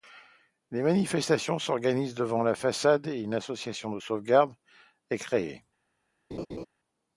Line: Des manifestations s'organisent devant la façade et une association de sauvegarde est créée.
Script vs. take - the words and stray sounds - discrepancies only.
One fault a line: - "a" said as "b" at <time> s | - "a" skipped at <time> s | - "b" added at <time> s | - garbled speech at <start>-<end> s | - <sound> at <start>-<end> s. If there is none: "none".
- laugh at 6.3-6.7 s